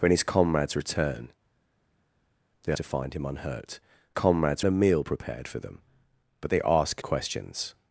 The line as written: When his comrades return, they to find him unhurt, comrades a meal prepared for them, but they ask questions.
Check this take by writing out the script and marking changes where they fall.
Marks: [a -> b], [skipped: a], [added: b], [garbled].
When his comrades return, they to find him unhurt, comrades a meal prepared for them, but they ask questions.